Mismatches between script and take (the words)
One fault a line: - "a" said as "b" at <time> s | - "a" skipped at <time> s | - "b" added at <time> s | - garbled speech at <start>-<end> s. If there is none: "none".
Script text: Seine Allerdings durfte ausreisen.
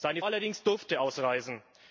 none